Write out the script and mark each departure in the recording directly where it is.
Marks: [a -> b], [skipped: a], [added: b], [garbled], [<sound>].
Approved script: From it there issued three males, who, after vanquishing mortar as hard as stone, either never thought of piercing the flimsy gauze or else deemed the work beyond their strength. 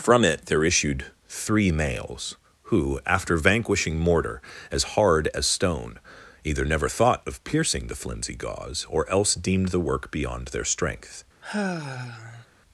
From it there issued three males, who, after vanquishing mortar as hard as stone, either never thought of piercing the flimsy gauze or else deemed the work beyond their strength. [sigh]